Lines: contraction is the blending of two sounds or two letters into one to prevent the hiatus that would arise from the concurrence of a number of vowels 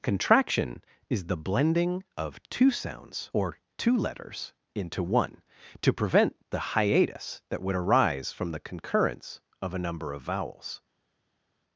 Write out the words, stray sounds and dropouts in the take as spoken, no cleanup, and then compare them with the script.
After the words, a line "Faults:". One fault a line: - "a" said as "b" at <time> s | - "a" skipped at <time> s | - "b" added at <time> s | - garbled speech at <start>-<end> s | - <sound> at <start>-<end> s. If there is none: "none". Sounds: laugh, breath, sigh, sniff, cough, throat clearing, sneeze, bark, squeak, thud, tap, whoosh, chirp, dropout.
contraction is the blending of two sounds or two letters into one to prevent the hiatus that would arise from the concurrence of a number of vowels
Faults:
none